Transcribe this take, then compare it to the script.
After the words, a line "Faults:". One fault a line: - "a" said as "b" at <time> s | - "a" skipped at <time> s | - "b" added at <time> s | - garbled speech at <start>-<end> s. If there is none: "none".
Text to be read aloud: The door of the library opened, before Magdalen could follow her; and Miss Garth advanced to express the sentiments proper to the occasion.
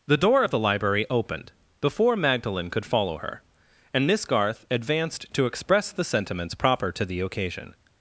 The door of the library opened, before Magdalen could follow her; and Miss Garth advanced to express the sentiments proper to the occasion.
Faults:
none